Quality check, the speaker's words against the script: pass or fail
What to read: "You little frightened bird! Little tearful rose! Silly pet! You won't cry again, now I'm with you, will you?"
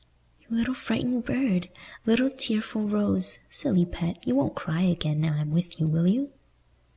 pass